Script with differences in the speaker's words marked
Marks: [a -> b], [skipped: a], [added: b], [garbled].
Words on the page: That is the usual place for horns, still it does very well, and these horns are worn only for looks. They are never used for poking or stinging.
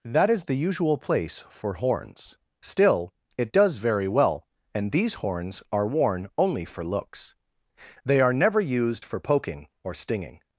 That is the usual place for horns, still it does very well, and these horns are worn only for looks. They are never used for poking or stinging.